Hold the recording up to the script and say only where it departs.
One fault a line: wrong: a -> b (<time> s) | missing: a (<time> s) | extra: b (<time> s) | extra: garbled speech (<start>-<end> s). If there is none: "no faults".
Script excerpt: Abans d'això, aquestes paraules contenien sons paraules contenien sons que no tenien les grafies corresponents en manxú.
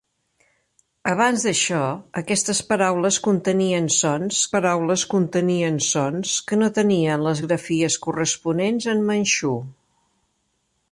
no faults